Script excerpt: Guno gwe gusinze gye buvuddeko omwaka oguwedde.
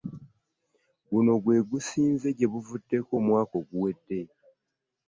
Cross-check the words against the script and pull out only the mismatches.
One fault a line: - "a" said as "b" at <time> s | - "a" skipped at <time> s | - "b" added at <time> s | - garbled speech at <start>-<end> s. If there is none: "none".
none